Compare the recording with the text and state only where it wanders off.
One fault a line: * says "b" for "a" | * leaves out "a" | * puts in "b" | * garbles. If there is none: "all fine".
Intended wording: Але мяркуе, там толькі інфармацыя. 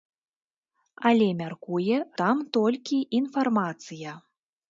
all fine